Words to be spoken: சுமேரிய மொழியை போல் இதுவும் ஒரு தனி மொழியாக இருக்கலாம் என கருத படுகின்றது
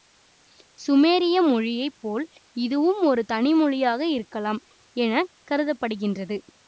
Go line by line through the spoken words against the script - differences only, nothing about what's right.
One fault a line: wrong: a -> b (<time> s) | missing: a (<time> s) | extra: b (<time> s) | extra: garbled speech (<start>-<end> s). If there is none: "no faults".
no faults